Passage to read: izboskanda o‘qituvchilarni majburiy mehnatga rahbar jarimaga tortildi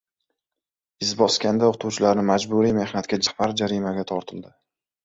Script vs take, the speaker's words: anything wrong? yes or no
no